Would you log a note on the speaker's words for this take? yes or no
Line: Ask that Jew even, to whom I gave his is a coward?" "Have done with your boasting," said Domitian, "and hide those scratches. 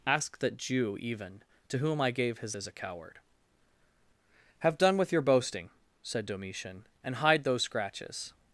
no